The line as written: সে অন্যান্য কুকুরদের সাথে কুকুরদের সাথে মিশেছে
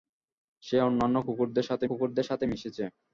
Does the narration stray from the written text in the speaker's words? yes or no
no